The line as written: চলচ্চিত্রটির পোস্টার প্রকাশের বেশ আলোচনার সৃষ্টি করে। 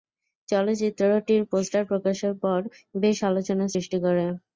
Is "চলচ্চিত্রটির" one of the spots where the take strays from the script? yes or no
no